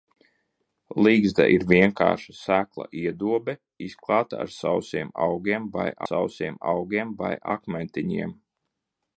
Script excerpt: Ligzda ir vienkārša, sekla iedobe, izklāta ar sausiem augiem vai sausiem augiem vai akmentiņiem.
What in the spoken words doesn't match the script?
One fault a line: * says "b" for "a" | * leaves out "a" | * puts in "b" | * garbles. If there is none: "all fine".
all fine